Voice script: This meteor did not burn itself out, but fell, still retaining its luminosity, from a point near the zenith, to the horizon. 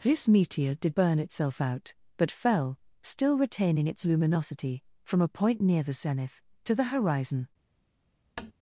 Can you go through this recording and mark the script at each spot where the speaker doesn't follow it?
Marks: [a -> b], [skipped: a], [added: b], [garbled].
This meteor did [skipped: not] burn itself out, but fell, still retaining its luminosity, from a point near the zenith, to the horizon.